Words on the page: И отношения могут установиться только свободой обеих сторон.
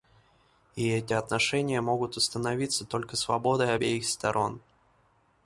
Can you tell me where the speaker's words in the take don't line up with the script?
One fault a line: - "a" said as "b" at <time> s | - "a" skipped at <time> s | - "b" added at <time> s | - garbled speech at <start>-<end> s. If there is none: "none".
- "эти" added at 0.9 s